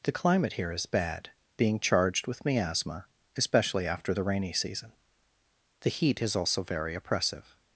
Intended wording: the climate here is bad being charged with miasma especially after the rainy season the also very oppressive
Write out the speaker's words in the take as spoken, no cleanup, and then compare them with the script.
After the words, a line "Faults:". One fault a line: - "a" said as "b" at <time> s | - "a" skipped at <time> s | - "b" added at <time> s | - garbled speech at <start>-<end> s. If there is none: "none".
the climate here is bad being charged with miasma especially after the rainy season the heat is also very oppressive
Faults:
- "heat is" added at 5.9 s